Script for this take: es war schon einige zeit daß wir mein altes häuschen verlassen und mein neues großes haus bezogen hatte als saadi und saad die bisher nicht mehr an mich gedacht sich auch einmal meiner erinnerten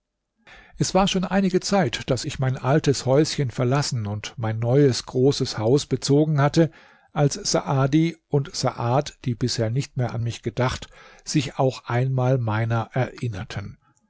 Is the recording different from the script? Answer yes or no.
yes